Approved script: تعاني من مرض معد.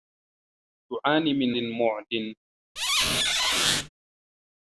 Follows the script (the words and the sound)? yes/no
no